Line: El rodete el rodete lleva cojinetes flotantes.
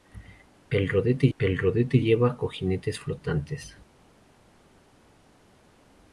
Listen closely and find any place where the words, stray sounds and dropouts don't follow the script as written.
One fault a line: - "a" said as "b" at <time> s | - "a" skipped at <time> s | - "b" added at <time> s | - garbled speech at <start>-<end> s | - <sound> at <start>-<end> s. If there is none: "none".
none